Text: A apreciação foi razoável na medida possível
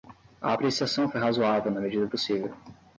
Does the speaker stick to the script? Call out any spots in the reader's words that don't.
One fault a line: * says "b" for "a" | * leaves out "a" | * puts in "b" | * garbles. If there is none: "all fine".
all fine